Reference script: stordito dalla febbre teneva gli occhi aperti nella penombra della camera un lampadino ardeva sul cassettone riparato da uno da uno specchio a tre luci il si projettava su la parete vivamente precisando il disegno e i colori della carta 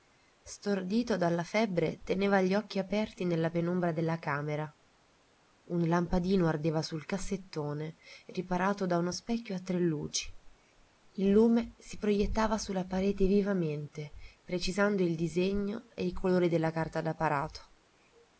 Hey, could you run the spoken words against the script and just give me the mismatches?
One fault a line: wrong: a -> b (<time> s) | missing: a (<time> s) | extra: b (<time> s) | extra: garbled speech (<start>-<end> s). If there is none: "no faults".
missing: da uno (9.1 s)
extra: lume (11.3 s)